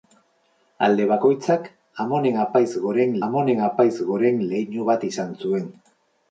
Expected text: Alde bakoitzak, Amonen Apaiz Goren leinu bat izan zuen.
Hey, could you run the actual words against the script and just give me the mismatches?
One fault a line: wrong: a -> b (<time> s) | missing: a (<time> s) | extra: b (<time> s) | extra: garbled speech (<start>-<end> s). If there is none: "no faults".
extra: Amonen Apaiz Goren (3.3 s)